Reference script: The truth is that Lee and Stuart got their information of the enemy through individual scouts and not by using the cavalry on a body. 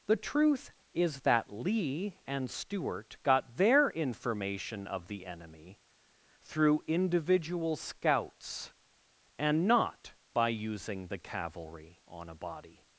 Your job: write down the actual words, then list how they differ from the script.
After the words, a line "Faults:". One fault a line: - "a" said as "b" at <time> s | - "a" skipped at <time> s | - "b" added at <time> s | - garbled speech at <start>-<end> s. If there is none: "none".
The truth is that Lee and Stuart got their information of the enemy through individual scouts and not by using the cavalry on a body.
Faults:
none